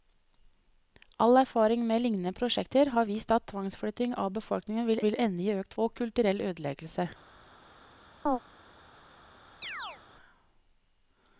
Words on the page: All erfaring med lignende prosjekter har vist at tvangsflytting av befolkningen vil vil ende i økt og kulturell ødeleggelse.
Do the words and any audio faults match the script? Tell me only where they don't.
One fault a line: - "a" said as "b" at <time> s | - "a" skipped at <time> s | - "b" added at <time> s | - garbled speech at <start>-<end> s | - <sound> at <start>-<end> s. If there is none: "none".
- chirp at 8.3-8.4 s
- chirp at 9.6-10.0 s